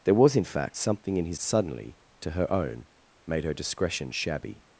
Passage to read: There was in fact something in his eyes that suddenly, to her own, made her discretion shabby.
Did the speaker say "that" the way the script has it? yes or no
no